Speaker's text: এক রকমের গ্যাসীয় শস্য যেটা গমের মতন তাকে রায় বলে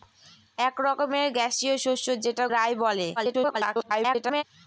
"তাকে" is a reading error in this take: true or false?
true